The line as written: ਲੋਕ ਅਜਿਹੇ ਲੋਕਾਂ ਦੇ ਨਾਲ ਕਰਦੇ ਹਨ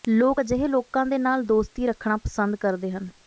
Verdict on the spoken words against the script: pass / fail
fail